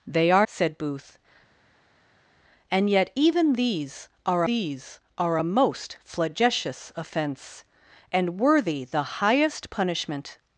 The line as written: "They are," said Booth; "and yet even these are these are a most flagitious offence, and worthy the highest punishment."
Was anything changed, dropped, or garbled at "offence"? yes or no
no